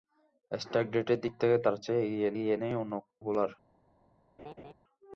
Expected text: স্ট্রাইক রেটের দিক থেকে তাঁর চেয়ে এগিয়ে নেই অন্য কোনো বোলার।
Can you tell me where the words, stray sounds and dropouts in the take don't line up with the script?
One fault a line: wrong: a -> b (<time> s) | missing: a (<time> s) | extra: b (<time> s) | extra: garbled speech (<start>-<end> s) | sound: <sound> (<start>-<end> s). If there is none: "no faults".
extra: এগিয়ে (2.3 s)
missing: কোনো (2.9 s)
sound: laugh (4.4-4.7 s)